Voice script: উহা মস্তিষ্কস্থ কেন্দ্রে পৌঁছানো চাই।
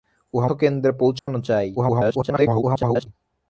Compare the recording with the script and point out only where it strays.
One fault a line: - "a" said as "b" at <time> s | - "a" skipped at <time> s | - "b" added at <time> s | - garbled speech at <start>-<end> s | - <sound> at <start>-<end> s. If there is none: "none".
- "মস্তিষ্কস্থ" skipped at 0.5 s
- dropout at 1.2-1.3 s
- garbled speech at 1.8-3.1 s